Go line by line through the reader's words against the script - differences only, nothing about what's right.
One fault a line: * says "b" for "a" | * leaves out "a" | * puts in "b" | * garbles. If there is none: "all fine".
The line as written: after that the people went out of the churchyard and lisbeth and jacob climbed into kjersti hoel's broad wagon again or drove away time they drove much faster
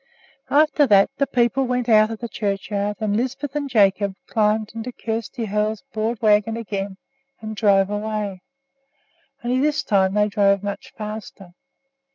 * says "and" for "or"
* puts in "only this"